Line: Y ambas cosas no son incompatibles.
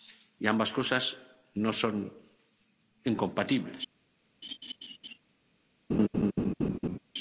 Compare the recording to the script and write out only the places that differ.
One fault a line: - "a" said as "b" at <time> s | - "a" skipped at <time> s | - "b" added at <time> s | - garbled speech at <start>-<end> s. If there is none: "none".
none